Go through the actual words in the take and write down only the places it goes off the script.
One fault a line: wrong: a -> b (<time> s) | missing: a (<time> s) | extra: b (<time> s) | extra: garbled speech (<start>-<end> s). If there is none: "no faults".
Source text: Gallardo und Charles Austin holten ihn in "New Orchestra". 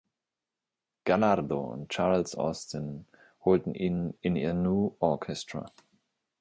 extra: ihr (4.4 s)